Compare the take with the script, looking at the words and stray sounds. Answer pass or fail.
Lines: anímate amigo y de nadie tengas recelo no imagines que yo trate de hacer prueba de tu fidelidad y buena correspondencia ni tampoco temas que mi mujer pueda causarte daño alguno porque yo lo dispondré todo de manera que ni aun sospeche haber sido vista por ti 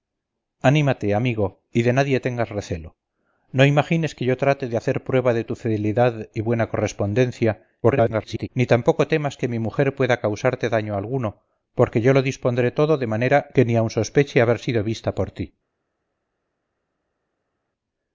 fail